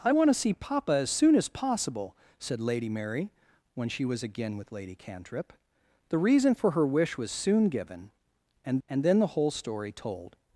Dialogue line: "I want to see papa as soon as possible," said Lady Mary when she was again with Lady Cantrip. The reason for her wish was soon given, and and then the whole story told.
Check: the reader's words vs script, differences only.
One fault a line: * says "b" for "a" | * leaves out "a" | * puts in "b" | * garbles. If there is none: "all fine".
all fine